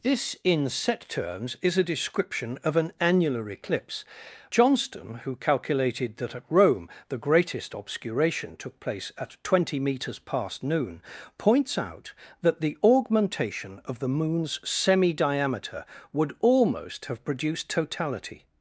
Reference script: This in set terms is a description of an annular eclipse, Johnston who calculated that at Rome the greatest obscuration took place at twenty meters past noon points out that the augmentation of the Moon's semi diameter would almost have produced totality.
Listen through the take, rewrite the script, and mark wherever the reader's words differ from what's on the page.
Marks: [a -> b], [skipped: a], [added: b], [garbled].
This in set terms is a description of an annular eclipse, Johnston who calculated that at Rome the greatest obscuration took place at twenty meters past noon points out that the augmentation of the Moon's semi diameter would almost have produced totality.